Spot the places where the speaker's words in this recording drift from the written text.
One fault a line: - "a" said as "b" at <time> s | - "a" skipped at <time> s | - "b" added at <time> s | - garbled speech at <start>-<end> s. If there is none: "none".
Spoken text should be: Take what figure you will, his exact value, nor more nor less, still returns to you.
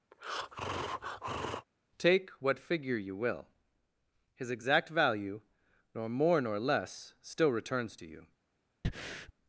none